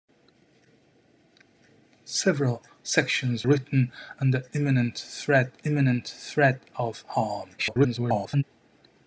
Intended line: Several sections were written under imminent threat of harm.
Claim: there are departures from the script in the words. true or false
true